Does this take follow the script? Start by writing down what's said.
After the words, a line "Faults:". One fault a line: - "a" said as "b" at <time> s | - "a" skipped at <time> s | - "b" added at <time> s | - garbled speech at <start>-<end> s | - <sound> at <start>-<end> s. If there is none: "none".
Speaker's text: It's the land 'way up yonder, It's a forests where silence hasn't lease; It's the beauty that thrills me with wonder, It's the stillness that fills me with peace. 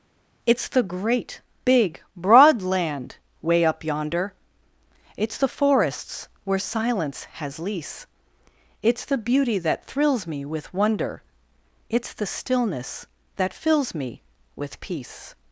It's the great, big, broad land 'way up yonder, It's the forests where silence has lease; It's the beauty that thrills me with wonder, It's the stillness that fills me with peace.
Faults:
- "great big broad" added at 0.8 s
- "a" said as "the" at 5.4 s
- "hasn't" said as "has" at 7.3 s